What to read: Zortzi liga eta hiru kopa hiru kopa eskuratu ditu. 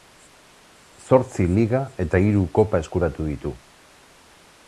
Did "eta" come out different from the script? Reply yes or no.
no